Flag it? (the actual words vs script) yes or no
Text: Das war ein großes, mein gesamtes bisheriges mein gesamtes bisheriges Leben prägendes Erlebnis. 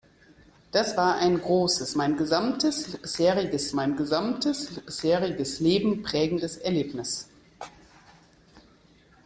no